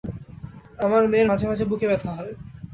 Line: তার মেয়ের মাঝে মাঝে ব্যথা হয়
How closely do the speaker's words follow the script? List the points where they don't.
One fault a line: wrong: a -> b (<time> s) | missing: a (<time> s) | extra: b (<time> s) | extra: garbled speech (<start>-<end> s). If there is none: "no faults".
wrong: তার -> আমার (0.8 s)
extra: বুকে (1.7 s)